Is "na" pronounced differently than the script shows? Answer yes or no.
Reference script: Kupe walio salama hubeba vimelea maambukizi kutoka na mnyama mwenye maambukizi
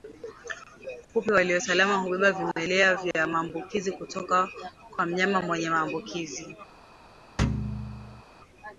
yes